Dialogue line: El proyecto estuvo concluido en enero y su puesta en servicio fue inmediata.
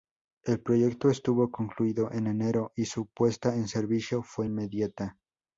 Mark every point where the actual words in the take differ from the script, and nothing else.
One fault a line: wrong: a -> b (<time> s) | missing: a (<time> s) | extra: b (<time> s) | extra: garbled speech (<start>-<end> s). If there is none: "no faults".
no faults